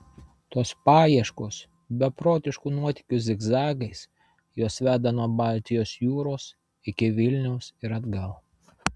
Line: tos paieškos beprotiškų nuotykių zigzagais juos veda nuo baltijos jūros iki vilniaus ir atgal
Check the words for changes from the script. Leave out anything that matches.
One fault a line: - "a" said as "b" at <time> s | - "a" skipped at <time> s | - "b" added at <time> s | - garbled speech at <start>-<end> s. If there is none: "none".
none